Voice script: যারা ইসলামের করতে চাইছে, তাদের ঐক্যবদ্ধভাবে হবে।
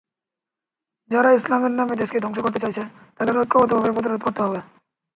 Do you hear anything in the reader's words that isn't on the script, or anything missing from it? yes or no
yes